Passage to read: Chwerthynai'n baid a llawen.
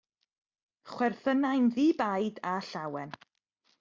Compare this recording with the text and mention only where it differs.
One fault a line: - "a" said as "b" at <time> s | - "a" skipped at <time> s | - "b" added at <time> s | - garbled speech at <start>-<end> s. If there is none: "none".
- "ddi" added at 1.7 s